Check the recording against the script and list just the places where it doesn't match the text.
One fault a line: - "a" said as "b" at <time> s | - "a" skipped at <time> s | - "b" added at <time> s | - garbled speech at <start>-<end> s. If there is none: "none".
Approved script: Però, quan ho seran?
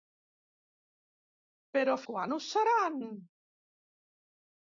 none